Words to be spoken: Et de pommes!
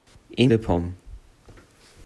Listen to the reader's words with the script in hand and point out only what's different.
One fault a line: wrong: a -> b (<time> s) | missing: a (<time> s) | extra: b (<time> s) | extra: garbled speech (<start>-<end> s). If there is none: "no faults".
no faults